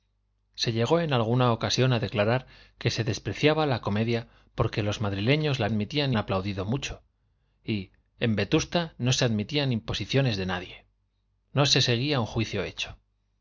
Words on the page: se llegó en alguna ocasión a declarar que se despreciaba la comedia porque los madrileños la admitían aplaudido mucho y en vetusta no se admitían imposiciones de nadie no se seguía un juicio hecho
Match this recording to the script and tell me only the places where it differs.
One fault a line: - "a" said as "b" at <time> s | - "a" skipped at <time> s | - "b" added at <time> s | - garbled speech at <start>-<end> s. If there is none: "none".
none